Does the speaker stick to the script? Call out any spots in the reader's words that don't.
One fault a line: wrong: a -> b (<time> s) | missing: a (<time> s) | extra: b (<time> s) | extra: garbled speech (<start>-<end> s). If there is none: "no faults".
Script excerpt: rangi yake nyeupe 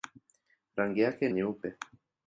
no faults